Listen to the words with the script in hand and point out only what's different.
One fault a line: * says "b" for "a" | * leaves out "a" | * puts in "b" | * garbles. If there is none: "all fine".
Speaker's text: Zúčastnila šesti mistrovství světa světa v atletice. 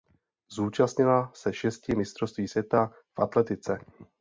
* puts in "se"
* leaves out "světa"